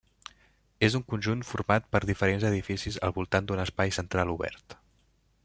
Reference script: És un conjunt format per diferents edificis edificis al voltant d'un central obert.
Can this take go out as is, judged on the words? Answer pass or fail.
fail